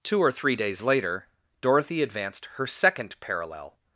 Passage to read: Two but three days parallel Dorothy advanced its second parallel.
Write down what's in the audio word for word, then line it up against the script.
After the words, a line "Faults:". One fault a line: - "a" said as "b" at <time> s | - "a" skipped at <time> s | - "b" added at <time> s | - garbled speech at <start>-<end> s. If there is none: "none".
Two or three days later Dorothy advanced her second parallel.
Faults:
- "but" said as "or" at 0.2 s
- "parallel" said as "later" at 0.8 s
- "its" said as "her" at 2.5 s